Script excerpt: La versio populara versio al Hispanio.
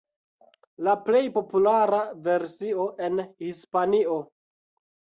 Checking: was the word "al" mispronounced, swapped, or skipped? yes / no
yes